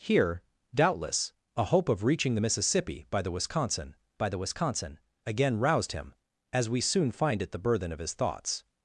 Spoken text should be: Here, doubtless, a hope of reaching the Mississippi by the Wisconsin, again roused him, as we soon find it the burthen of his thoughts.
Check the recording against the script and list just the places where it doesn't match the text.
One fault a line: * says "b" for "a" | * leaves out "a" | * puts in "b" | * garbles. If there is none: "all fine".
* puts in "by the Wisconsin"